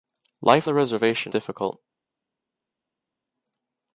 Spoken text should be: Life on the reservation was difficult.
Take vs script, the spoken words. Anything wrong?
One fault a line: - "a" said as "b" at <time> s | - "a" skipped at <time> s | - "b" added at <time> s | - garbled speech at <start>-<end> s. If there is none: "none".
- "on" skipped at 0.7 s
- "was" skipped at 1.3 s